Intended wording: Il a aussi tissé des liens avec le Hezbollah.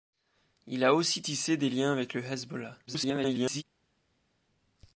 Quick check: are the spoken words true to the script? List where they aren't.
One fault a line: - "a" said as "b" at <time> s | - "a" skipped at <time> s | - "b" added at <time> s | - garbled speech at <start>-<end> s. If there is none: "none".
- garbled speech at 2.9-3.6 s